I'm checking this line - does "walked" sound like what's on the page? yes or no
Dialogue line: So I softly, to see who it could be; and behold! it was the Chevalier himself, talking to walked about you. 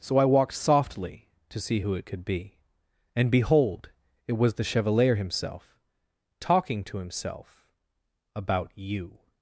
no